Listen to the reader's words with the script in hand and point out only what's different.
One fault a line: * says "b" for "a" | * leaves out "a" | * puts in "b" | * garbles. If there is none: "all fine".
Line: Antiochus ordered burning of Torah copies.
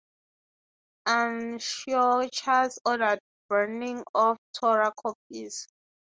all fine